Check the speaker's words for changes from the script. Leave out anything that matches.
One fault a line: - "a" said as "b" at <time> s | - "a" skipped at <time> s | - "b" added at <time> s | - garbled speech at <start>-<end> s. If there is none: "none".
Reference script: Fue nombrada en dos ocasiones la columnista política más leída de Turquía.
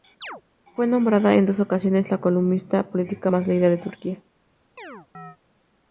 none